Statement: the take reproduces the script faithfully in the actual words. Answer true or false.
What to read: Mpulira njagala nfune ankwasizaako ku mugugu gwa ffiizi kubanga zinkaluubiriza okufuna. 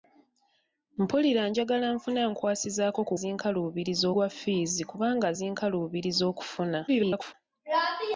false